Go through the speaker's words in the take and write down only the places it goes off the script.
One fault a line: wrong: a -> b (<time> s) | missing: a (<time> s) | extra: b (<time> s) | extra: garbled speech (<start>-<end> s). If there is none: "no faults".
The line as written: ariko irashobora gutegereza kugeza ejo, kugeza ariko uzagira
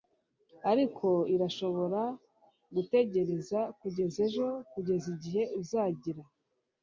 wrong: ariko -> igihe (5.1 s)